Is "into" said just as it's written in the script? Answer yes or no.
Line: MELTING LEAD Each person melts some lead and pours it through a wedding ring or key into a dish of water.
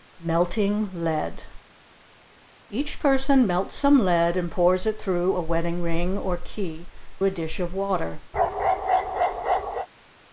no